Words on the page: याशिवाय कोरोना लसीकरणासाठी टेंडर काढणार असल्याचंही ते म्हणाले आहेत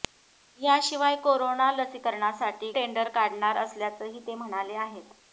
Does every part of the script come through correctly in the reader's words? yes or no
yes